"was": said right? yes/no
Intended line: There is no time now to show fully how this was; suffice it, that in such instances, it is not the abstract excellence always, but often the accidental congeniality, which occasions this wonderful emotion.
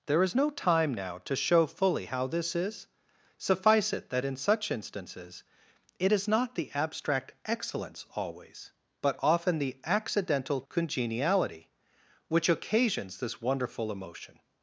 no